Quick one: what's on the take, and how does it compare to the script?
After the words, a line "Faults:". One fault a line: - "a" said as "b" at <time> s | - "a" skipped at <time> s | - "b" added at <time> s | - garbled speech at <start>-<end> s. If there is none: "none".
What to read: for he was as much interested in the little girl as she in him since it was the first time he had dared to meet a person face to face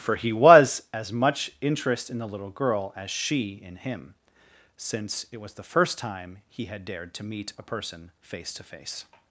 for he was as much interest in the little girl as she in him since it was the first time he had dared to meet a person face to face
Faults:
- "interested" said as "interest" at 1.6 s